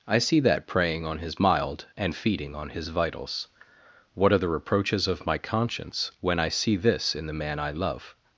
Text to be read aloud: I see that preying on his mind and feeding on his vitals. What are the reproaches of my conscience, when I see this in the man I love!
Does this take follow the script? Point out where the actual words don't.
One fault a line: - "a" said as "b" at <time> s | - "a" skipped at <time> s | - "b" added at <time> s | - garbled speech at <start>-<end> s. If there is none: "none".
- "mind" said as "mild" at 1.4 s